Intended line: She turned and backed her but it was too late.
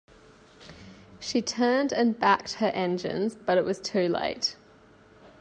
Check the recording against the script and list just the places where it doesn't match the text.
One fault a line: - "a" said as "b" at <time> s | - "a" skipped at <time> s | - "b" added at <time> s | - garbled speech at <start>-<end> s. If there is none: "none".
- "engines" added at 2.7 s